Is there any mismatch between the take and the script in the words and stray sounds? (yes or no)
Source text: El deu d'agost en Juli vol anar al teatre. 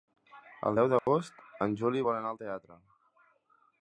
yes